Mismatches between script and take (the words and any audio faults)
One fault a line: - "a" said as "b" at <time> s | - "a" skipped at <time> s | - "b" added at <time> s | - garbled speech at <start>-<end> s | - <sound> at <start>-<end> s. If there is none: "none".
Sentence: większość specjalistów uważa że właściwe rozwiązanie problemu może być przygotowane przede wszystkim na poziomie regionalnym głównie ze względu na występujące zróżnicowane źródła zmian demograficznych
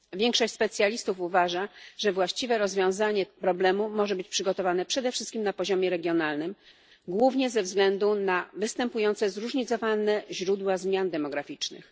none